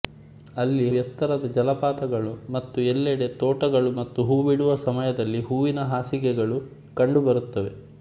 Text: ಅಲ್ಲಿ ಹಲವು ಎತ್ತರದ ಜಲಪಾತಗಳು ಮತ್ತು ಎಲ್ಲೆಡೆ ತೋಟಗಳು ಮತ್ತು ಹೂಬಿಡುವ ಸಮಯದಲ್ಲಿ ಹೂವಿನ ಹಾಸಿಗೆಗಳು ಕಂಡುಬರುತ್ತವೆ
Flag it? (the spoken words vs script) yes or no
yes